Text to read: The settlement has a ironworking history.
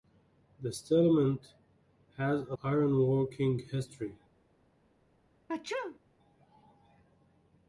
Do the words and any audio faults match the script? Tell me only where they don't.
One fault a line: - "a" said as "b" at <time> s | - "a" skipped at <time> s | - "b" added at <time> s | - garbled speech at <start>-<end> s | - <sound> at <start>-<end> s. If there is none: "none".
- sneeze at 5.5-6.0 s